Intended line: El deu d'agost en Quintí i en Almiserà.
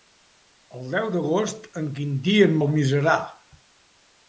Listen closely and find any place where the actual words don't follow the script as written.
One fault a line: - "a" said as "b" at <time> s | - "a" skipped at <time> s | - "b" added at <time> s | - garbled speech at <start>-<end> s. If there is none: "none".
none